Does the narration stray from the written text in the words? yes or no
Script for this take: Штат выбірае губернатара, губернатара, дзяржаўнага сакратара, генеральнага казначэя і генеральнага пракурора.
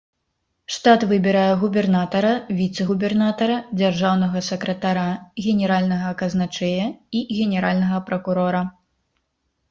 yes